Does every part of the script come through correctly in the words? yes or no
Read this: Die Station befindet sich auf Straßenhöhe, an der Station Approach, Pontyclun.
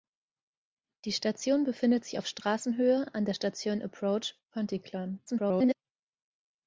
no